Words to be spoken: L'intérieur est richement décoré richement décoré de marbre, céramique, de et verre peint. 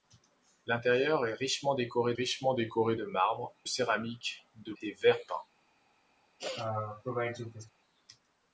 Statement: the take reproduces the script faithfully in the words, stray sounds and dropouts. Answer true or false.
false